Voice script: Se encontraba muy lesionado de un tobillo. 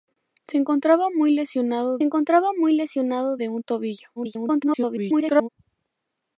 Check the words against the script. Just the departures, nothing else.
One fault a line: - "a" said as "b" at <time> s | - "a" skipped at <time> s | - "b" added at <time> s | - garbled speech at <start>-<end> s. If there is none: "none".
- "encontraba muy lesionado" added at 2.0 s
- garbled speech at 4.2-5.5 s